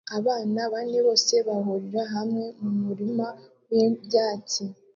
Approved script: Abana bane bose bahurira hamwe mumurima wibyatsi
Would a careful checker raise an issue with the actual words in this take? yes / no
no